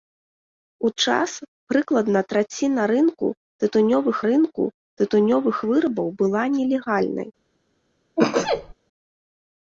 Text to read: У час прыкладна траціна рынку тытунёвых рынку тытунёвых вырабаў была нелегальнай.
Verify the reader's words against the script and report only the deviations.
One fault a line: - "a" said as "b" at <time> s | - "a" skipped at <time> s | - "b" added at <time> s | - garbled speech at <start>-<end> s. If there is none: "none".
none